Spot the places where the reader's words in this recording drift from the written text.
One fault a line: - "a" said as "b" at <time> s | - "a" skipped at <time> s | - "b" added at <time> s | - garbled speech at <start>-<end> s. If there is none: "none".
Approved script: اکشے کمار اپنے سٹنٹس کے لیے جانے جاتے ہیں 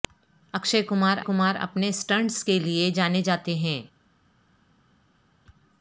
- "کمار" added at 1.2 s